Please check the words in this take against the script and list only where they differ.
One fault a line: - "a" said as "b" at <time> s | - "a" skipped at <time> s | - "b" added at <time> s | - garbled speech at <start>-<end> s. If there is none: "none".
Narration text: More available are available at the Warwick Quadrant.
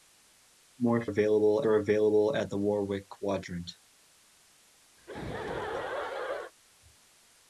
none